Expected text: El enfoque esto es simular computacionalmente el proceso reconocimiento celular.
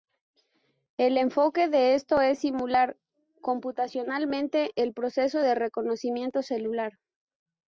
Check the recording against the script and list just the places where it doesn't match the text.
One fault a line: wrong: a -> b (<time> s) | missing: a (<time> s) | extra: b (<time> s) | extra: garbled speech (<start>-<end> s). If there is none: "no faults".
extra: de (1.7 s)
extra: de (5.4 s)